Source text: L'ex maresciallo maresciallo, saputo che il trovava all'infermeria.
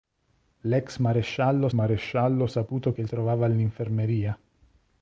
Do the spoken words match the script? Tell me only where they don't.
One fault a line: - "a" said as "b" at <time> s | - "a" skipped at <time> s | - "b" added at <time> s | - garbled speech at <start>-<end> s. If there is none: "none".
none